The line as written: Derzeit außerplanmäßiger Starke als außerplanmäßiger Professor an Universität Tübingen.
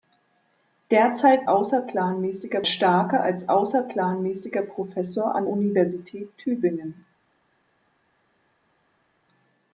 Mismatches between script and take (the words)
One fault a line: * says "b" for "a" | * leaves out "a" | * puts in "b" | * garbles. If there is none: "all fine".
all fine